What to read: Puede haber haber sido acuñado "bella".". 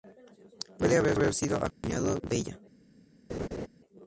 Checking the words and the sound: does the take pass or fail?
fail